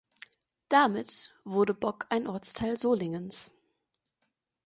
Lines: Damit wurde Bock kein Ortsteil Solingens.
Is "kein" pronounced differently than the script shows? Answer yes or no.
yes